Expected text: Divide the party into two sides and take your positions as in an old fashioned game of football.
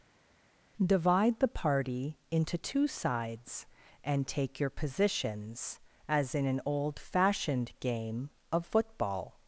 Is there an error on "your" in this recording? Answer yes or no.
no